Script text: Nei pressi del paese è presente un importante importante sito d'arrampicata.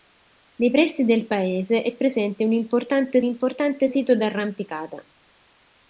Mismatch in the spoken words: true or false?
false